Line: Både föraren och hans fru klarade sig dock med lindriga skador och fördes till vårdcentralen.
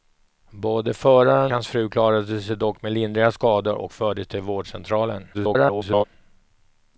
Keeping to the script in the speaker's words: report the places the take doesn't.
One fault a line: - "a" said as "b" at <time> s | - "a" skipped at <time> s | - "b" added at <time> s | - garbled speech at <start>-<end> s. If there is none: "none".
- "och" skipped at 1.5 s
- garbled speech at 5.3-6.0 s